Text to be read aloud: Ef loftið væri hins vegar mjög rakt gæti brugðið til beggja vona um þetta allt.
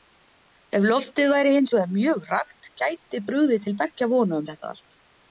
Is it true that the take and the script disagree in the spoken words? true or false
false